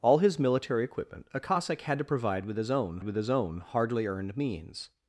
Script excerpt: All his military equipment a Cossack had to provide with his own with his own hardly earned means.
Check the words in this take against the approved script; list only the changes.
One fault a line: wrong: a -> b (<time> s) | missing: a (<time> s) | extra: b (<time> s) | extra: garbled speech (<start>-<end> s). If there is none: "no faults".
no faults